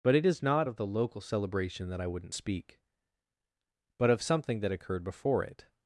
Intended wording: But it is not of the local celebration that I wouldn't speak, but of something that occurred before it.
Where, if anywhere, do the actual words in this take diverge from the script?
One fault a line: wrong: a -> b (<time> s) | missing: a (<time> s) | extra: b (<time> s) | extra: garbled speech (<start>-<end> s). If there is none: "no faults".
no faults